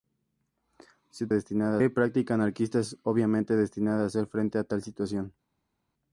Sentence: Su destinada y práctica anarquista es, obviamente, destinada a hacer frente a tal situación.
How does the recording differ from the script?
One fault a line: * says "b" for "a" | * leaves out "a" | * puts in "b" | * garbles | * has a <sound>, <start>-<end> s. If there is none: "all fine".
all fine